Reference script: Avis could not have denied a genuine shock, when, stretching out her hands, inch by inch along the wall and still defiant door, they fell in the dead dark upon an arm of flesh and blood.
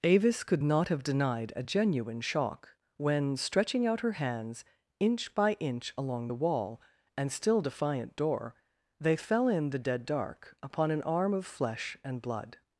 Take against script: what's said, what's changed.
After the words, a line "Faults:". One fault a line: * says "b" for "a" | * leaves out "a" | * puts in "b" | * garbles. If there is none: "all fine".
Avis could not have denied a genuine shock, when, stretching out her hands, inch by inch along the wall and still defiant door, they fell in the dead dark upon an arm of flesh and blood.
Faults:
all fine